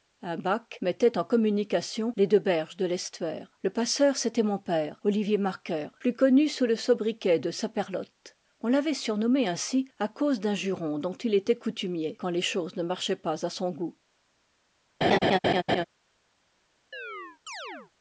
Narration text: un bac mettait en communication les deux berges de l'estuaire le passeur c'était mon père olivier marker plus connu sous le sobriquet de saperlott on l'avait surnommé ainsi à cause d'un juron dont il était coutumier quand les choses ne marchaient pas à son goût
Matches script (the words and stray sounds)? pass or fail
fail